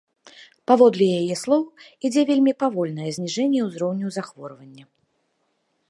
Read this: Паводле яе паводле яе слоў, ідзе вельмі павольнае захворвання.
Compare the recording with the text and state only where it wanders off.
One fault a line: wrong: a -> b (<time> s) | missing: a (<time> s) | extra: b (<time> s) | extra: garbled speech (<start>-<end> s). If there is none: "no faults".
missing: паводле яе (1.4 s)
extra: зніжэнне ўзроўню (3.2 s)